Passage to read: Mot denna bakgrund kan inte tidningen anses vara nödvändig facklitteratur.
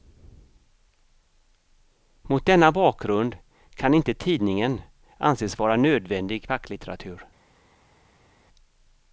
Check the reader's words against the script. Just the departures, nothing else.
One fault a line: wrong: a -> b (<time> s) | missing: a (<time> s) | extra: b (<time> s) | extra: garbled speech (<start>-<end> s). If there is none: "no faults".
no faults